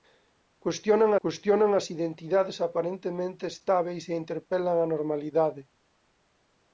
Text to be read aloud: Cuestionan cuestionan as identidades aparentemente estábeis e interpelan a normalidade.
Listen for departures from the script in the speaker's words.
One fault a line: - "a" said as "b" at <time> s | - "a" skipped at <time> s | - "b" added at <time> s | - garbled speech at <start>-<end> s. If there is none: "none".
none